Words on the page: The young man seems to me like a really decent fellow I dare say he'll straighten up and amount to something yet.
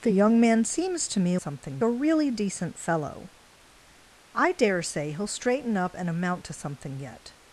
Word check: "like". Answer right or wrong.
wrong